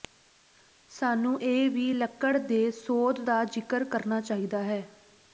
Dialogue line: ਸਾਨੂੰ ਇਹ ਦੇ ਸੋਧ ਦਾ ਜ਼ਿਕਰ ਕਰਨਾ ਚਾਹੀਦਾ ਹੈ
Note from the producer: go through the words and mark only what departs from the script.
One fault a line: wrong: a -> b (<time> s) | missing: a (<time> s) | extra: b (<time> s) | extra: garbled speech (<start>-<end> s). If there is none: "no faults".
extra: ਵੀ ਲੱਕੜ (1.7 s)